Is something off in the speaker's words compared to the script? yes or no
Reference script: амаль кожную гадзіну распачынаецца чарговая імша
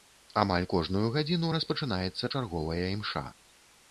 no